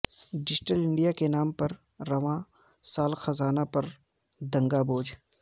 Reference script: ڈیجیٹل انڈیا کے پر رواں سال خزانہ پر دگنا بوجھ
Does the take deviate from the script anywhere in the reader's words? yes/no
yes